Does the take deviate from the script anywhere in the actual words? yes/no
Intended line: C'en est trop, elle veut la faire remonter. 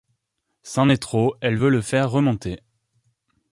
yes